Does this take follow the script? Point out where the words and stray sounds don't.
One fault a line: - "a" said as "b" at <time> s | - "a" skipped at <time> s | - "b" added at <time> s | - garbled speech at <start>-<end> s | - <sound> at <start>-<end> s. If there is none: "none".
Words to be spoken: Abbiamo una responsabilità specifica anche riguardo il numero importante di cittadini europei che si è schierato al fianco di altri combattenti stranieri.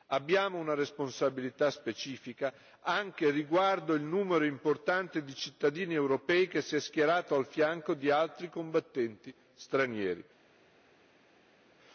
none